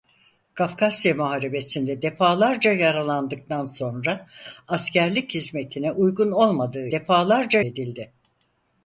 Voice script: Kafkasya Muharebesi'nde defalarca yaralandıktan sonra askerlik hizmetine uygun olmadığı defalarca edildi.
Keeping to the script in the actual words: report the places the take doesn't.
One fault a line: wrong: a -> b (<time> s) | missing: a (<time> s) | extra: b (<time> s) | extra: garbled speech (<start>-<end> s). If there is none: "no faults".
no faults